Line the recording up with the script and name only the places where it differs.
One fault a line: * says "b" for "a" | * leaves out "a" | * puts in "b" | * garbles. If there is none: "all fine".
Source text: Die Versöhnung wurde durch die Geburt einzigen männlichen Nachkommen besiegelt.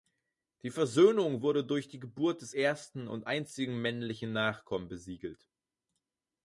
* puts in "des ersten und"